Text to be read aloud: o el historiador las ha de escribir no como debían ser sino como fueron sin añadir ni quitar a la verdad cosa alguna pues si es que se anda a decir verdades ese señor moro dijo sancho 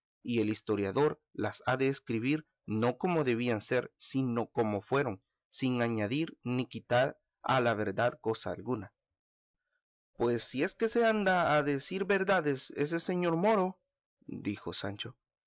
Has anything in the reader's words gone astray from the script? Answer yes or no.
yes